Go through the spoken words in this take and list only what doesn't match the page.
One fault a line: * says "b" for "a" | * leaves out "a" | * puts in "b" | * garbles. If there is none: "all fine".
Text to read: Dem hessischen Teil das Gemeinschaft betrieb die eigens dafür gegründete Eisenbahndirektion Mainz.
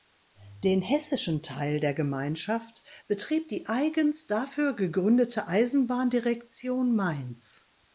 * says "Den" for "Dem"
* says "der" for "das"